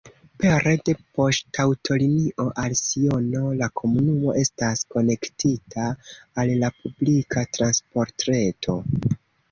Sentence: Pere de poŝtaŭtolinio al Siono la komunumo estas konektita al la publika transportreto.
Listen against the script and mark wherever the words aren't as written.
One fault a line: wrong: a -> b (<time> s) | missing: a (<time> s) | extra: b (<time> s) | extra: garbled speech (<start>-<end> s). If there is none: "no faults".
no faults